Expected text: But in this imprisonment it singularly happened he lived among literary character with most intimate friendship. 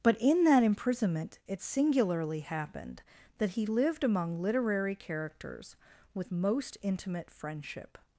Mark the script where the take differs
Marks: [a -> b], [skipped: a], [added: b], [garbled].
But in [this -> that] imprisonment it singularly happened [added: that] he lived among literary [character -> characters] with most intimate friendship.